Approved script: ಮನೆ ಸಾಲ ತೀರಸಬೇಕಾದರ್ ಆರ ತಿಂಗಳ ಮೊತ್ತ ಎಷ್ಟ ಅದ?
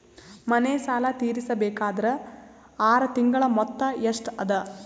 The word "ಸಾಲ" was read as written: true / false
true